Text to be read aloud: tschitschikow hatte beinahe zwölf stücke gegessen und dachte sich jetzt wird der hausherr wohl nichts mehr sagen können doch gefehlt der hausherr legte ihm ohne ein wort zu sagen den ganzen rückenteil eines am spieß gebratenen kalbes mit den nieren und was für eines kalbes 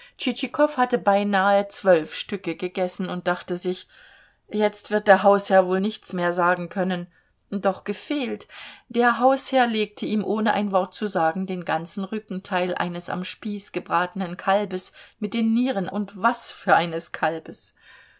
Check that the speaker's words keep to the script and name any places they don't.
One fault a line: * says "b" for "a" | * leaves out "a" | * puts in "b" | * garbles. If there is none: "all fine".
all fine